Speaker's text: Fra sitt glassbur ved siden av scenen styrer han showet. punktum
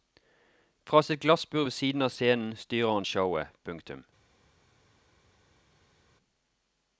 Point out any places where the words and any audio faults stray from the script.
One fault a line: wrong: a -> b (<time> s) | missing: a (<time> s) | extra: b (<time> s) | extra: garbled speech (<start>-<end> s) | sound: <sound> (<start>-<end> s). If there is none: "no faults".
no faults